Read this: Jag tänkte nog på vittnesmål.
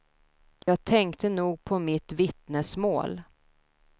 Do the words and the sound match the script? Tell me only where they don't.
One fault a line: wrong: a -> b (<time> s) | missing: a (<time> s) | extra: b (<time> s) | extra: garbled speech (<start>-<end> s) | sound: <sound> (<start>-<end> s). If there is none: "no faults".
sound: dropout (0.6-0.7 s)
extra: mitt (1.8 s)